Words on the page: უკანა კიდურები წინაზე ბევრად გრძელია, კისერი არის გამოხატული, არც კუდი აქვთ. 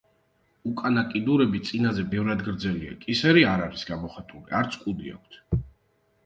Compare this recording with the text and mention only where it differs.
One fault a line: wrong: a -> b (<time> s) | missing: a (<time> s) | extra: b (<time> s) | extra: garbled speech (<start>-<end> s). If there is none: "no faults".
extra: არ (3.5 s)